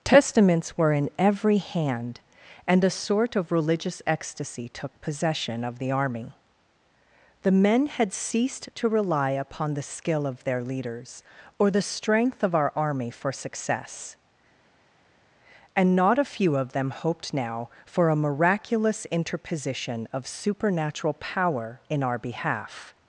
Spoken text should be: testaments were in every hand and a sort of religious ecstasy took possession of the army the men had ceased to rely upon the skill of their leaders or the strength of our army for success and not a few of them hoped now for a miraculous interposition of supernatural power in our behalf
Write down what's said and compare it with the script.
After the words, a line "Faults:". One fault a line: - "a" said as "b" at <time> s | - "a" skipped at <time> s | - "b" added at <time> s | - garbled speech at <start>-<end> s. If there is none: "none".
testaments were in every hand and a sort of religious ecstasy took possession of the army the men had ceased to rely upon the skill of their leaders or the strength of our army for success and not a few of them hoped now for a miraculous interposition of supernatural power in our behalf
Faults:
none